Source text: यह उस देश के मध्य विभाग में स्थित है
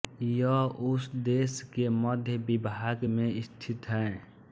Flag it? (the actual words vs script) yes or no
no